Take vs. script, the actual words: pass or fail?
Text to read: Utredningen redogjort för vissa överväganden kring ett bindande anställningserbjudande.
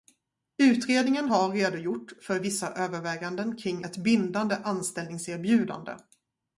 fail